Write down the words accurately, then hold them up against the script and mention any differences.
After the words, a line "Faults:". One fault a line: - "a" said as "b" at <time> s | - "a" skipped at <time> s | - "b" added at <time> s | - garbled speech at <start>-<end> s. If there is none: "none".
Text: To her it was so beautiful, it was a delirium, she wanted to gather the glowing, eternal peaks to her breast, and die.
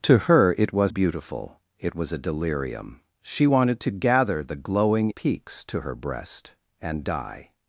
To her it was beautiful, it was a delirium, she wanted to gather the glowing, peaks to her breast, and die.
Faults:
- "so" skipped at 0.9 s
- "eternal" skipped at 5.1 s